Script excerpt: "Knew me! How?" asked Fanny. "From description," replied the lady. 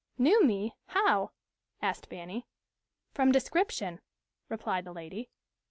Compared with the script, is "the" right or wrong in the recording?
right